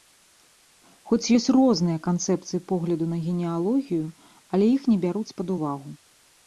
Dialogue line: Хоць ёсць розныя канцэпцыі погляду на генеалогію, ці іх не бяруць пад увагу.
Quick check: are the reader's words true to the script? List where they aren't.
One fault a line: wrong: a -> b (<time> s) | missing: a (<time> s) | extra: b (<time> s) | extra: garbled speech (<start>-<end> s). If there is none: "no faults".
wrong: ці -> але (4.5 s)